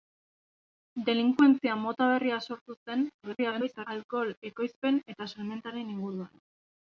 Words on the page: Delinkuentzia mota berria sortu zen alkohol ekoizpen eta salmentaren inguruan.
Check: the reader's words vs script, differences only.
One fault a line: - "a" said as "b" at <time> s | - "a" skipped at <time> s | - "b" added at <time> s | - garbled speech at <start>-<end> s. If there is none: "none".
- garbled speech at 3.2-3.9 s